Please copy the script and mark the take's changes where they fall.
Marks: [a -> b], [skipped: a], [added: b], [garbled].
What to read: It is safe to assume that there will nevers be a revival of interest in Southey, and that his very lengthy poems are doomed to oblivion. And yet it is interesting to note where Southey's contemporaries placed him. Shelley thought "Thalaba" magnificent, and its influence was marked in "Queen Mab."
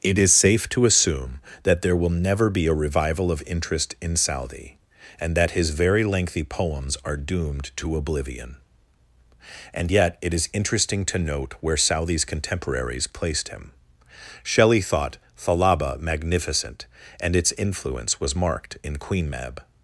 It is safe to assume that there will [nevers -> never] be a revival of interest in Southey, and that his very lengthy poems are doomed to oblivion. And yet it is interesting to note where Southey's contemporaries placed him. Shelley thought "Thalaba" magnificent, and its influence was marked in "Queen Mab."